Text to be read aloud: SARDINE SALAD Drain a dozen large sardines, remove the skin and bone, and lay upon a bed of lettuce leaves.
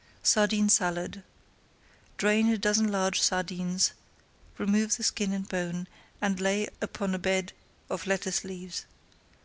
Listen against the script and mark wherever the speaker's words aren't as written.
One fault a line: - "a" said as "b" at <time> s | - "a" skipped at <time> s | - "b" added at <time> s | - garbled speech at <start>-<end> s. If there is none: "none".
none